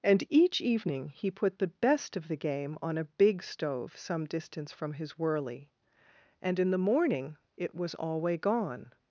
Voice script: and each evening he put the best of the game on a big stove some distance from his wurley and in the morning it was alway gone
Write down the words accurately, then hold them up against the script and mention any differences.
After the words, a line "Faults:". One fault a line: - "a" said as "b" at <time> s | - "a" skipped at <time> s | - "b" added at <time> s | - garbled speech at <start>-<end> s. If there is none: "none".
and each evening he put the best of the game on a big stove some distance from his wurley and in the morning it was alway gone
Faults:
none